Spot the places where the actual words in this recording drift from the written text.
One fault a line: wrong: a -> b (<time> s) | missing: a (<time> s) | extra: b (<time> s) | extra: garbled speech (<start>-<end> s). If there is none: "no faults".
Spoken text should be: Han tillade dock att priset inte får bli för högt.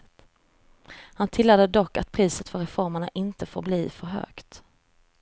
extra: för reformerna (2.5 s)